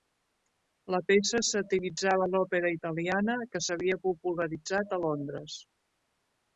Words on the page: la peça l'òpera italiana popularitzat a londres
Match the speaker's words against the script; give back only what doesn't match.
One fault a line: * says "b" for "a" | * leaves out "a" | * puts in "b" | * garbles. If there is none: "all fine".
* puts in "satiritzava"
* puts in "que s'havia"